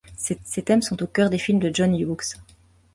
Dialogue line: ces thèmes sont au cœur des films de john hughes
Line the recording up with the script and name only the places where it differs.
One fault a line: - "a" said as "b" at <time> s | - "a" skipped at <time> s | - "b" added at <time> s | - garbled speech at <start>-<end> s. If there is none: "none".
- "ces" added at 0.4 s